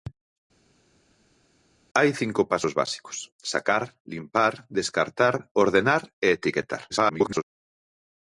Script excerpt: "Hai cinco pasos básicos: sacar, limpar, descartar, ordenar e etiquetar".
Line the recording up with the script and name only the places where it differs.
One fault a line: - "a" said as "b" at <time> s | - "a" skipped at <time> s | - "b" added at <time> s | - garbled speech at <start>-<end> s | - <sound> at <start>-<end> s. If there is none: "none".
- garbled speech at 6.9-7.4 s